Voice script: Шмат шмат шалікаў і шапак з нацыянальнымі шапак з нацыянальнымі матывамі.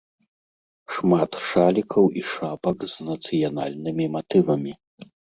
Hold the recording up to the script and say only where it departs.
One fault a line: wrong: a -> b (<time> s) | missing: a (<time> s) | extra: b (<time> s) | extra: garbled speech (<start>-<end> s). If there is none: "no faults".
missing: шмат (1.3 s)
missing: шапак з нацыянальнымі (4.0 s)